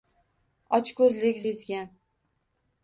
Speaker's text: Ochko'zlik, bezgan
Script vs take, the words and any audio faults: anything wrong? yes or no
no